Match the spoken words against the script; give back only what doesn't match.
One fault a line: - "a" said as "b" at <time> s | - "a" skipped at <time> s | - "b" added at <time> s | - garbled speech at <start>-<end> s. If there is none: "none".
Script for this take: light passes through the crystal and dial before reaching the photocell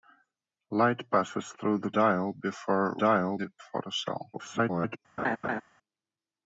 - "crystal and" skipped at 1.9 s
- "reaching" said as "dial" at 3.0 s
- garbled speech at 4.3-5.0 s